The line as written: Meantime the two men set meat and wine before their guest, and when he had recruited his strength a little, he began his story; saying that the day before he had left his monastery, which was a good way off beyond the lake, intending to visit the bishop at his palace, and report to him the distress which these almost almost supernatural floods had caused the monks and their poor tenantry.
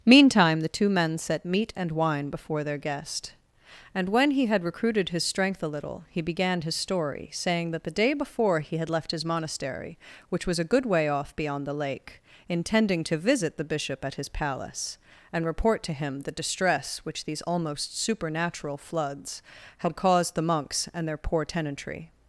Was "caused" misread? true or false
false